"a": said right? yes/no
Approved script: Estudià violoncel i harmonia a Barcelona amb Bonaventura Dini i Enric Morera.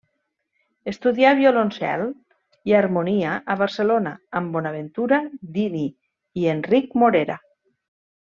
yes